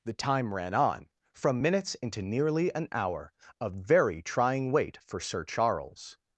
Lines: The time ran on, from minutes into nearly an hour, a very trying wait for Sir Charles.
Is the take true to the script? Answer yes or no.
yes